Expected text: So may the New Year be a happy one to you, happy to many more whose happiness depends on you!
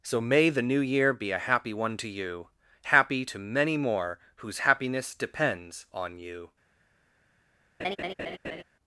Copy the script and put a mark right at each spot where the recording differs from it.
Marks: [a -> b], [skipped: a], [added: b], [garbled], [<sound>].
So may the New Year be a happy one to you, happy to many more whose happiness depends on you! [laugh]